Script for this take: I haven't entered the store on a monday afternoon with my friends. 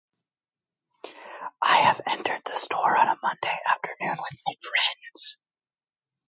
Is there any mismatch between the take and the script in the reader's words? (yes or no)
yes